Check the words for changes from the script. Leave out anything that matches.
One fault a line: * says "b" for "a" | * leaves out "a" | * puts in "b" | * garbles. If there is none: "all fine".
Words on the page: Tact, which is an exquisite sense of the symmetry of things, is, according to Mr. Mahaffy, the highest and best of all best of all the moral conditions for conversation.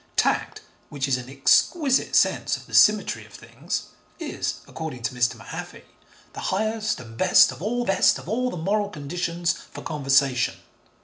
all fine